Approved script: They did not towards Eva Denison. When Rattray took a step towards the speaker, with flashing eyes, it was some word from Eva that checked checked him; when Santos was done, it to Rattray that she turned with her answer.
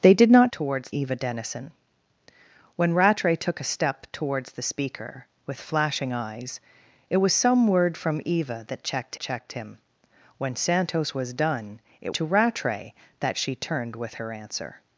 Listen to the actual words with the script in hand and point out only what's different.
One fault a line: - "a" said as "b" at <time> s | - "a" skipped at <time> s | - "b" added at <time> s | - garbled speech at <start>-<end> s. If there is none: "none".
none